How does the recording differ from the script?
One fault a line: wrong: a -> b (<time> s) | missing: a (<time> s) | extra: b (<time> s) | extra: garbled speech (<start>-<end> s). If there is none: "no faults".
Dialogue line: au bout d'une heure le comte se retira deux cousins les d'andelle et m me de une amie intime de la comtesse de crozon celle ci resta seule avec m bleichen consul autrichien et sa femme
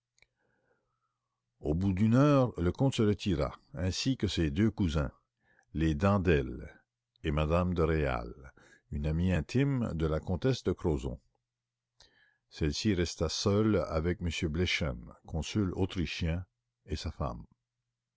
extra: ainsi que ses (3.7 s)
extra: réal (7.8 s)